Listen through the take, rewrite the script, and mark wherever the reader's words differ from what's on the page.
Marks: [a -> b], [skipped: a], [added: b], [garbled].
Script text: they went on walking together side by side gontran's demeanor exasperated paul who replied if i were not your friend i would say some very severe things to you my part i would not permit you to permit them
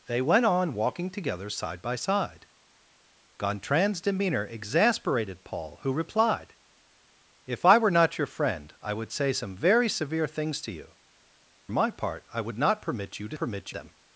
they went on walking together side by side gontran's demeanor exasperated paul who replied if i were not your friend i would say some very severe things to you my part i would not permit you to permit them